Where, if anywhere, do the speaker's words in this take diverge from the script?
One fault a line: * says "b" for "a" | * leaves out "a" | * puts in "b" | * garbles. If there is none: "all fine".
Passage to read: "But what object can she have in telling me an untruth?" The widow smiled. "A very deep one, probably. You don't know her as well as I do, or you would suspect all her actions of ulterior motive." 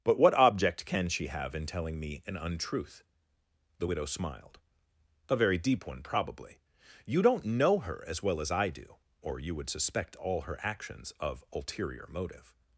all fine